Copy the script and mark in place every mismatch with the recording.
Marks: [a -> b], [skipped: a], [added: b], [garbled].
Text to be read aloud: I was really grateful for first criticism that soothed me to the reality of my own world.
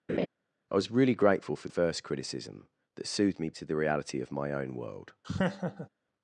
I was really grateful for first criticism that soothed me to the reality of my own world.